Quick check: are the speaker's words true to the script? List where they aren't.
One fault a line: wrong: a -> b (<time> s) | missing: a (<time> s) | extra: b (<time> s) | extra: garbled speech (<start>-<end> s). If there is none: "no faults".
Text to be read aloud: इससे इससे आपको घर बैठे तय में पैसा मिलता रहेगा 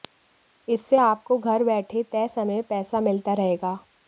missing: इससे (1.0 s)
extra: समय (2.3 s)